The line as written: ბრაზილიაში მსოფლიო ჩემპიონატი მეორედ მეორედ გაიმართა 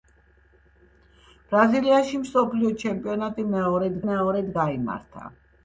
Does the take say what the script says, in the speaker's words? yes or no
yes